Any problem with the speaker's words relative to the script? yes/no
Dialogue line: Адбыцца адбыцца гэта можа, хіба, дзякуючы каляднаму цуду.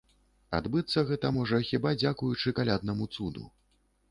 yes